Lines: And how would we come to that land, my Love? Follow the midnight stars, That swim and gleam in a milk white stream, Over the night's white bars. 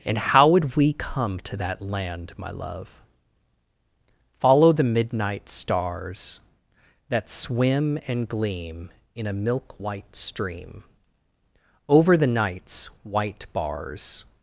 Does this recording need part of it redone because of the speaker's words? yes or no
no